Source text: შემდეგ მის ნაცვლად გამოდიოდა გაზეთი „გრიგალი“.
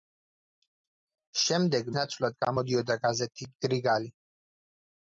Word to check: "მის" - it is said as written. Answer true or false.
false